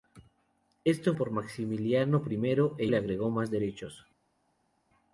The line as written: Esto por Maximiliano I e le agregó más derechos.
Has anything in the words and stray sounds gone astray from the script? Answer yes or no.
no